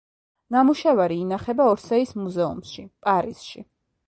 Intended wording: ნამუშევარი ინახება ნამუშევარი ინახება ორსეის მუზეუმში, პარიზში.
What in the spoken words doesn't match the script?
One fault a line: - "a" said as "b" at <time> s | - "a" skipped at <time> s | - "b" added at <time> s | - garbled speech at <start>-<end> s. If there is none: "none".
- "ნამუშევარი ინახება" skipped at 1.7 s